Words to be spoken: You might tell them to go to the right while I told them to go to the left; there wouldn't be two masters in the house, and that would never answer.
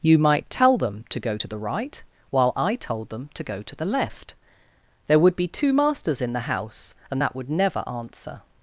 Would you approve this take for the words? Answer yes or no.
no